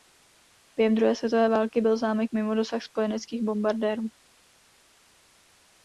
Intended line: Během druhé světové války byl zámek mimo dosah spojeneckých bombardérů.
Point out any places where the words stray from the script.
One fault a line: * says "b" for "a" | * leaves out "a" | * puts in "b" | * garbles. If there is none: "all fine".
all fine